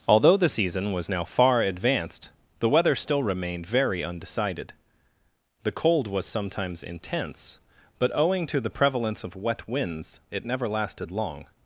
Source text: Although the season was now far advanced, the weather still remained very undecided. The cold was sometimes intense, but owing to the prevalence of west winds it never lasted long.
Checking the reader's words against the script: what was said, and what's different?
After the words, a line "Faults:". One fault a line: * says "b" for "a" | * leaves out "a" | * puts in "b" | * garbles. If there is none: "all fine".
Although the season was now far advanced, the weather still remained very undecided. The cold was sometimes intense, but owing to the prevalence of wet winds it never lasted long.
Faults:
* says "wet" for "west"